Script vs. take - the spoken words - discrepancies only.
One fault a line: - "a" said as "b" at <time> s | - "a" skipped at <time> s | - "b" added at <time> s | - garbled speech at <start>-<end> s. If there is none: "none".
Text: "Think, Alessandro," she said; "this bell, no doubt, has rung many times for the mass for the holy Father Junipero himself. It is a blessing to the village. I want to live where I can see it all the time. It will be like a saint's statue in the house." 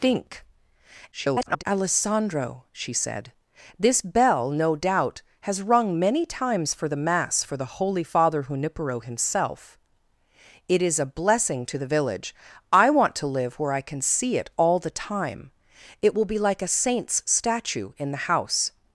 - garbled speech at 1.1-1.6 s